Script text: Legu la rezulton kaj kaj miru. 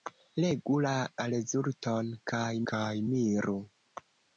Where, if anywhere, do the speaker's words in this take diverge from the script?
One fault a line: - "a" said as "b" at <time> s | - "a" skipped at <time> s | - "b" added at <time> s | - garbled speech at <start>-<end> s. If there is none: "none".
none